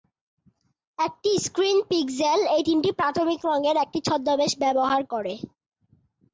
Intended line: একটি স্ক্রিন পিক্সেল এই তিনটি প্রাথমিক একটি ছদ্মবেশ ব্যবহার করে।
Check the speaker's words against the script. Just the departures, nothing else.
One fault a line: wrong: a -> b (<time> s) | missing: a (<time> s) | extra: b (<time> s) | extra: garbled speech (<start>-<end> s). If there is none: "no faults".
extra: রঙের (3.5 s)